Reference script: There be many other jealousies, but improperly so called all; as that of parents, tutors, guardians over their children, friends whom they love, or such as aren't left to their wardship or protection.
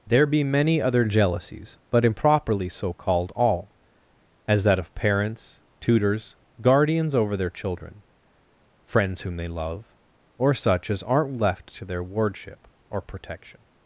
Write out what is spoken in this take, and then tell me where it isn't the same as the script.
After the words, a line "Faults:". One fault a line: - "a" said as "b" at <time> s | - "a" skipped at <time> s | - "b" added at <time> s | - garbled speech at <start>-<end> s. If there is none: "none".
There be many other jealousies, but improperly so called all; as that of parents, tutors, guardians over their children, friends whom they love, or such as aren't left to their wardship or protection.
Faults:
none